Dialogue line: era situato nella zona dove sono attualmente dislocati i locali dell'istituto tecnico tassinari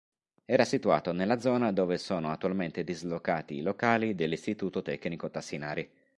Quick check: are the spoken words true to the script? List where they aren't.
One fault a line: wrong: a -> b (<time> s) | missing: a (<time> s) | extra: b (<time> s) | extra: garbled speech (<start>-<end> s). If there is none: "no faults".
no faults